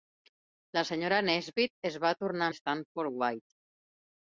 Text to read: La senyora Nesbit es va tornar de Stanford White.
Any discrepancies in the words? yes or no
no